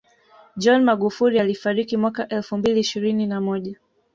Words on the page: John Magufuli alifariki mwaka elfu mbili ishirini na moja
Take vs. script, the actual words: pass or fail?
pass